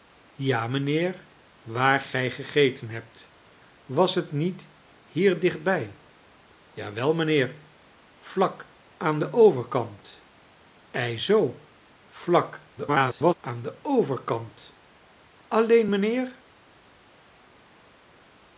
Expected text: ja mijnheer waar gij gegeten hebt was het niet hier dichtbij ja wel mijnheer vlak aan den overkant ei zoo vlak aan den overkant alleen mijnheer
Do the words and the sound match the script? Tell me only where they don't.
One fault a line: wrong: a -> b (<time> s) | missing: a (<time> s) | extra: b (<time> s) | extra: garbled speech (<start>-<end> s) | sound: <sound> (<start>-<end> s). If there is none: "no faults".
extra: garbled speech (12.8-13.3 s)